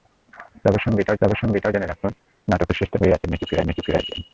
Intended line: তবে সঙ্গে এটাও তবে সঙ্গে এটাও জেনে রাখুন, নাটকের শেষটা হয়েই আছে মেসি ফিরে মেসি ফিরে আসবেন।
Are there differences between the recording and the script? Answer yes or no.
no